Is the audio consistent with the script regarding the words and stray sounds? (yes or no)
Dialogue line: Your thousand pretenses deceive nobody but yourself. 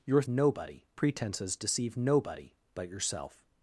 no